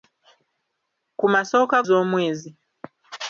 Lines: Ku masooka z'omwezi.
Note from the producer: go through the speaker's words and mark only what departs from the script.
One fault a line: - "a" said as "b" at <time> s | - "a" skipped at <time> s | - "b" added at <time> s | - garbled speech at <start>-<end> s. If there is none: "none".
none